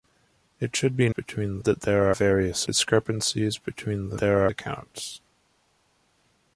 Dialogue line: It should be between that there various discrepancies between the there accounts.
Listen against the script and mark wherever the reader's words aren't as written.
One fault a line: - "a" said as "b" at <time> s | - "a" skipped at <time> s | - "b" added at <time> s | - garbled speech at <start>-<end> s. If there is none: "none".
none